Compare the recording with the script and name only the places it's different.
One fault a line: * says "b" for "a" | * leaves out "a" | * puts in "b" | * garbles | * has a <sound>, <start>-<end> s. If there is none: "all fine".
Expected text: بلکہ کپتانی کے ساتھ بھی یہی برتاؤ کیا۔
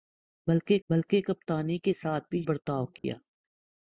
* puts in "بلکہ"
* leaves out "یہی"
* has a dropout, 3.0-3.0 s